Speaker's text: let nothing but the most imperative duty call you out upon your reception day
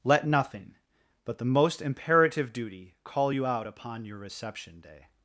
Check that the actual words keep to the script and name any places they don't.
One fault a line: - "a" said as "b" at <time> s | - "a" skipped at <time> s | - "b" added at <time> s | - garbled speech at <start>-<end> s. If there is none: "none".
none